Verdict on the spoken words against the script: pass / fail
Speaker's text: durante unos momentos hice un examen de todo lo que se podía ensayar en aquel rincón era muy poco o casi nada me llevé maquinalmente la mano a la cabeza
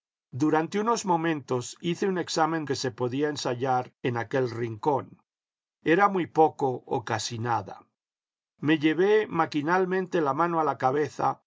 fail